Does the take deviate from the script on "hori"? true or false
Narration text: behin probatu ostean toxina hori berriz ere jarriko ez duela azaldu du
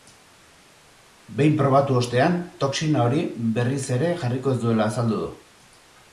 false